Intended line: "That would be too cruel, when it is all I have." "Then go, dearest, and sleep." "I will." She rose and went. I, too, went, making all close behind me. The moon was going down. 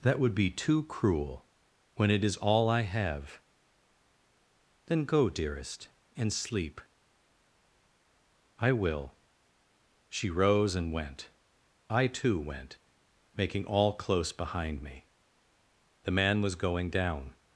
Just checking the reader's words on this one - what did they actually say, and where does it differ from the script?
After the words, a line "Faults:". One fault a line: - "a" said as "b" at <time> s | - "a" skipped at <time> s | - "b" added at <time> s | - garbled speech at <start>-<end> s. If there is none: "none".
"That would be too cruel, when it is all I have." "Then go, dearest, and sleep." "I will." She rose and went. I, too, went, making all close behind me. The man was going down.
Faults:
- "moon" said as "man" at 16.1 s